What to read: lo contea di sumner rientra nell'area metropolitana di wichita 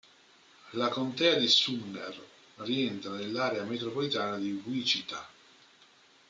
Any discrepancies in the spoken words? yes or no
yes